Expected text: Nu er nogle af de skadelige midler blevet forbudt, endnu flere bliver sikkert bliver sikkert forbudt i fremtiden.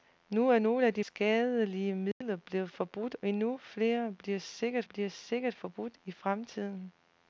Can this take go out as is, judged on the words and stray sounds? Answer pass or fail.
fail